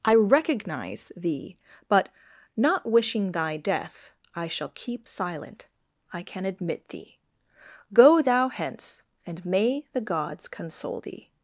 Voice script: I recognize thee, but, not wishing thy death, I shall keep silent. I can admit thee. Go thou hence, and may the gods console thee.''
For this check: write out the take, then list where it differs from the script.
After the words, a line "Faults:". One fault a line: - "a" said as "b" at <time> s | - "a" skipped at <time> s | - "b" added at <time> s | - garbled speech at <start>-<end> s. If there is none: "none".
I recognize thee, but, not wishing thy death, I shall keep silent. I can admit thee. Go thou hence, and may the gods console thee.''
Faults:
none